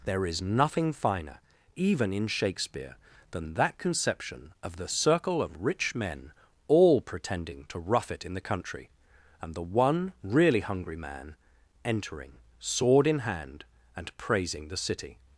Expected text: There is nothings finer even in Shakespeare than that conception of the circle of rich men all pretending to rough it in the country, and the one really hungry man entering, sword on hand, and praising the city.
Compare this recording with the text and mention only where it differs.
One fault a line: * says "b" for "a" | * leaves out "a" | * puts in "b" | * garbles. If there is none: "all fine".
* says "nothing" for "nothings"
* says "in" for "on"